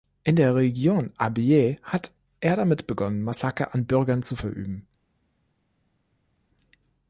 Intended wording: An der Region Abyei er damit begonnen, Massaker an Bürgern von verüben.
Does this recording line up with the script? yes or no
no